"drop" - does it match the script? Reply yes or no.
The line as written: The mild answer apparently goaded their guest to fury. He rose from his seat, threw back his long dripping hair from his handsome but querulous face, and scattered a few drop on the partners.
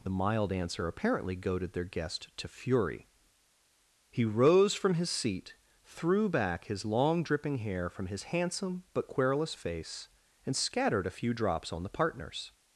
no